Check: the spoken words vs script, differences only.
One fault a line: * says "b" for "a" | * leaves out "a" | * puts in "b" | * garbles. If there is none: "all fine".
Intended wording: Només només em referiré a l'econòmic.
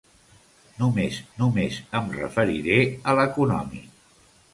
all fine